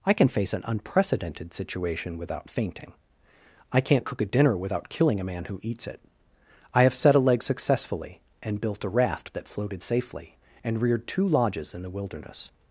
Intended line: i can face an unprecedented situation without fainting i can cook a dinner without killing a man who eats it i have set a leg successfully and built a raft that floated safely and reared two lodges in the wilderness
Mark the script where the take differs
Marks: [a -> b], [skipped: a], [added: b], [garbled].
i can face an unprecedented situation without fainting i [can -> can't] cook a dinner without killing a man who eats it i have set a leg successfully and built a raft that floated safely and reared two lodges in the wilderness